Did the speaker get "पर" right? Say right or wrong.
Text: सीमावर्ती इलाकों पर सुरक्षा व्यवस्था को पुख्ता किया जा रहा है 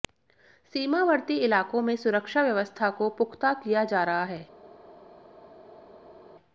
wrong